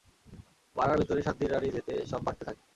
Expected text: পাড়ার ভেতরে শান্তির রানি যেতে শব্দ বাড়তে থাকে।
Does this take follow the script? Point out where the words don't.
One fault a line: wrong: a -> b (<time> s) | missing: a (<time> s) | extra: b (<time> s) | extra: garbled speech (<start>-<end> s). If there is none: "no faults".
no faults